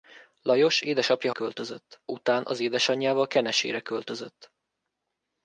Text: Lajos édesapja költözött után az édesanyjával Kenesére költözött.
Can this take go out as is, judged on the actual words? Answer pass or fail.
pass